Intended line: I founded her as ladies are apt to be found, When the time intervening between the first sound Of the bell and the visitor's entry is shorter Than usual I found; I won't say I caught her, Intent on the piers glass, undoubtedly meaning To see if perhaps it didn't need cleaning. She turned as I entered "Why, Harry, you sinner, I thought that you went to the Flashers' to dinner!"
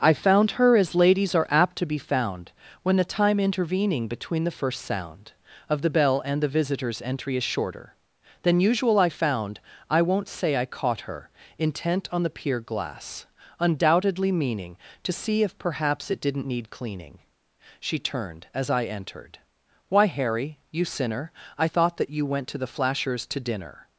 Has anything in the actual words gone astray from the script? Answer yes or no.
yes